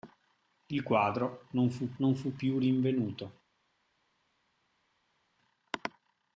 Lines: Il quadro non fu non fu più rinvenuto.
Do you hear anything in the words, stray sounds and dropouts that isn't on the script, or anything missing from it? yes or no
no